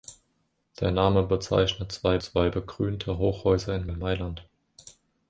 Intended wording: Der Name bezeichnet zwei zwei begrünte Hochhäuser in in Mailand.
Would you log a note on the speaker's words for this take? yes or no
no